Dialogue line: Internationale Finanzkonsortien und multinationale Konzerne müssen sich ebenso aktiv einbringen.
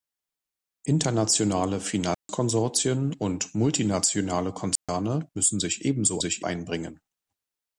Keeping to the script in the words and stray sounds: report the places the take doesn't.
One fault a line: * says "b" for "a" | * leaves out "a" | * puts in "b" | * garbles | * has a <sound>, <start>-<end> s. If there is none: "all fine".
* has a dropout, 2.1-2.3 s
* has a dropout, 4.8-4.9 s
* says "sich" for "aktiv"